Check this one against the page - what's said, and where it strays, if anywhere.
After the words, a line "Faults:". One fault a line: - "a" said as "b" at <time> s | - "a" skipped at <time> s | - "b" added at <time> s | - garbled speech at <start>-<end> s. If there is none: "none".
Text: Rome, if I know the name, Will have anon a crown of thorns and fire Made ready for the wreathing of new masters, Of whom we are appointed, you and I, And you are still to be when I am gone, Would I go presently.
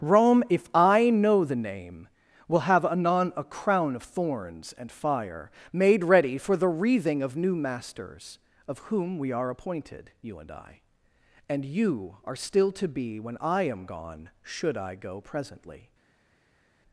Rome, if I know the name, Will have anon a crown of thorns and fire Made ready for the wreathing of new masters, Of whom we are appointed, you and I, And you are still to be when I am gone, Should I go presently.
Faults:
- "Would" said as "Should" at 14.4 s